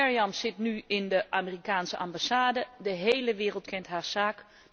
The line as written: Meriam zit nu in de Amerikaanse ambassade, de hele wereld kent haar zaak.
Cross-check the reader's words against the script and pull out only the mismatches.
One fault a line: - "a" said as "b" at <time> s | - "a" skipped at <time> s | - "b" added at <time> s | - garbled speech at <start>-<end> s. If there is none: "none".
none